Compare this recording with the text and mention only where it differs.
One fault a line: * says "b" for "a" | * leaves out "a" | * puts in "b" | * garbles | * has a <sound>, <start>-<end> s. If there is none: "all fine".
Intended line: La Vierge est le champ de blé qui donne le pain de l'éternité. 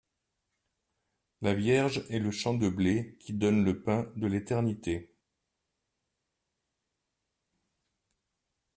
all fine